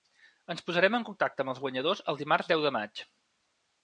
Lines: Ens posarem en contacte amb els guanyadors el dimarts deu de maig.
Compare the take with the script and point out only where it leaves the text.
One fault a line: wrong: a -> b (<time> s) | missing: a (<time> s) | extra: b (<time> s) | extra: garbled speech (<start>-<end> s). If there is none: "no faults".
no faults